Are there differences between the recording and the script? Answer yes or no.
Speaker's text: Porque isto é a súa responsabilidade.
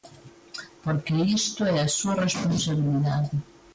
no